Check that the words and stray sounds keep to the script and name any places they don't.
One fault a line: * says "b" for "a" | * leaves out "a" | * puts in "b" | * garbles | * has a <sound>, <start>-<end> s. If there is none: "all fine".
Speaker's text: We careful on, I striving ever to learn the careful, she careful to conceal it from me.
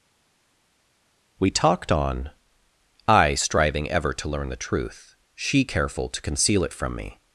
* says "talked" for "careful"
* says "truth" for "careful"